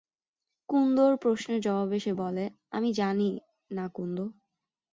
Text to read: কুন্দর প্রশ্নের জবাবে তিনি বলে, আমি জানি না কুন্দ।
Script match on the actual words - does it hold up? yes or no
no